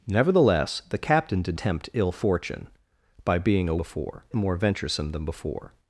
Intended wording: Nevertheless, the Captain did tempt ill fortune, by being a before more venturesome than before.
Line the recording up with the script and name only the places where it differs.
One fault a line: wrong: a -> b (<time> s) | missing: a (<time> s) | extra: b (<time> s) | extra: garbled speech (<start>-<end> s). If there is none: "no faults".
no faults